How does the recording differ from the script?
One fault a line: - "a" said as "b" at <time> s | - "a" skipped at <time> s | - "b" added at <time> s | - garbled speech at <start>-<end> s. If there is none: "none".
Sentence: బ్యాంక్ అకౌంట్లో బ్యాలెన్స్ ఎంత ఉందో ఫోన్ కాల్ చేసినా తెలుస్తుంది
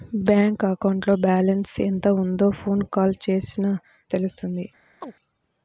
none